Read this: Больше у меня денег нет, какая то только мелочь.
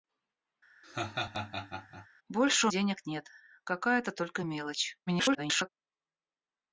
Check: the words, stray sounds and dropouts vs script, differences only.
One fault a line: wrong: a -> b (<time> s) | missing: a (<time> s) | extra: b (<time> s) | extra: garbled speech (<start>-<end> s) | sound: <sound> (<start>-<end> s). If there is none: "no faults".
sound: laugh (0.8-2.1 s)
missing: меня (2.7 s)
extra: garbled speech (5.1-5.7 s)